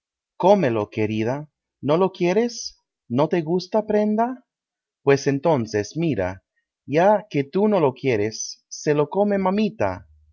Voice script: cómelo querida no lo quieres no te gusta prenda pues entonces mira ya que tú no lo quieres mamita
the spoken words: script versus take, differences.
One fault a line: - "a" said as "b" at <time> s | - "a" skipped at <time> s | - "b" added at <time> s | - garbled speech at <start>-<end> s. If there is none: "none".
- "se lo come" added at 8.7 s